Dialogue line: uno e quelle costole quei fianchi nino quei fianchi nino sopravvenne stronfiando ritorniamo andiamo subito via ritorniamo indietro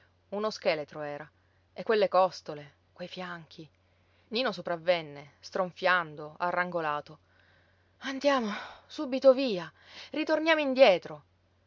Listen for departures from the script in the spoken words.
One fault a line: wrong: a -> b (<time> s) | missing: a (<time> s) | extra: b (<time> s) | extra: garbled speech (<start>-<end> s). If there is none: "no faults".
extra: scheletro era (0.5 s)
missing: quei fianchi nino (4.5 s)
wrong: ritorniamo -> arrangolato (6.4 s)